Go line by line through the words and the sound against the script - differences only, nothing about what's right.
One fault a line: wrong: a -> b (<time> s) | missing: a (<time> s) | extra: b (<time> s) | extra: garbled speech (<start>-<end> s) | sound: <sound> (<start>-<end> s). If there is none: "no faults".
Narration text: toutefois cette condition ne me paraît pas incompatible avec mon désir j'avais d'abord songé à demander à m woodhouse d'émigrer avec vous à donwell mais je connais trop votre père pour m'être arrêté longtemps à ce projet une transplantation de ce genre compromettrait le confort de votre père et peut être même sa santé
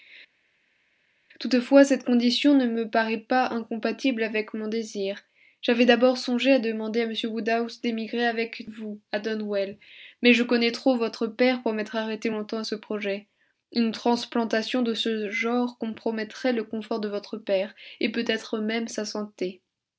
no faults